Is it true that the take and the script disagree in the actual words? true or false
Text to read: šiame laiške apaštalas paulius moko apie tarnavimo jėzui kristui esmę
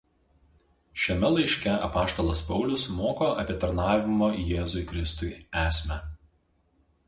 false